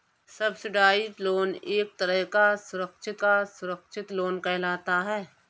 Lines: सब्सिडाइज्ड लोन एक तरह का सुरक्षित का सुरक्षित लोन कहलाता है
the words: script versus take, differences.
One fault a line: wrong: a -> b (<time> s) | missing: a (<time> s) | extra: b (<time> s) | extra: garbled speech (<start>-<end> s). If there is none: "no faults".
no faults